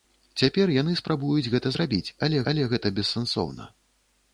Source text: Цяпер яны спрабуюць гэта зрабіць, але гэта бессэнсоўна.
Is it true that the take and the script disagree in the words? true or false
true